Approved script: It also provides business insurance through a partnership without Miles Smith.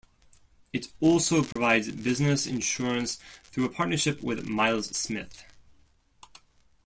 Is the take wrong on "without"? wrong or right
wrong